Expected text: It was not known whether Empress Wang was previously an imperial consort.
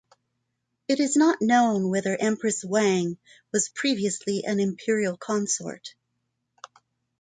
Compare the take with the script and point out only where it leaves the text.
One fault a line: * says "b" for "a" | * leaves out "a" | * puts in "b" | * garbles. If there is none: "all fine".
* says "is" for "was"